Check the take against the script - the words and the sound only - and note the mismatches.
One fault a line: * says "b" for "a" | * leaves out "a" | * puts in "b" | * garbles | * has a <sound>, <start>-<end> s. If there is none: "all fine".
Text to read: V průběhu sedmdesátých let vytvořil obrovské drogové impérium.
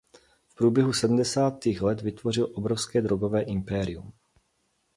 all fine